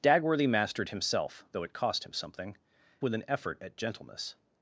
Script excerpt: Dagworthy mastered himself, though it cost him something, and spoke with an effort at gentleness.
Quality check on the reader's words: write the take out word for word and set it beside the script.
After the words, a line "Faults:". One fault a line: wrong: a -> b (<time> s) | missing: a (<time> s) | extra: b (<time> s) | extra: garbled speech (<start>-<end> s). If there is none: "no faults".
Dagworthy mastered himself, though it cost him something, with an effort at gentleness.
Faults:
missing: and spoke (2.6 s)